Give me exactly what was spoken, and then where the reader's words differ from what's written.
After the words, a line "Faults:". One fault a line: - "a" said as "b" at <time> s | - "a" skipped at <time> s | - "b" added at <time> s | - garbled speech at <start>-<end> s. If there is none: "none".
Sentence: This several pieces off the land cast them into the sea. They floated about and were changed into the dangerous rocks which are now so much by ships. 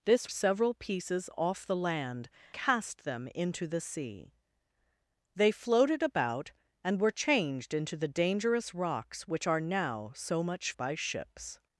This several pieces off the land cast them into the sea. They floated about and were changed into the dangerous rocks which are now so much by ships.
Faults:
none